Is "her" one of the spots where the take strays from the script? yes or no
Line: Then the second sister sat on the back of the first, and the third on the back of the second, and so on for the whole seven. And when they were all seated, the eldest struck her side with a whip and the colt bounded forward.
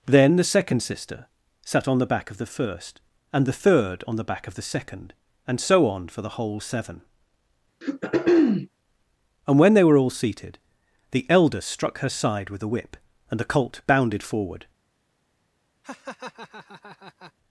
no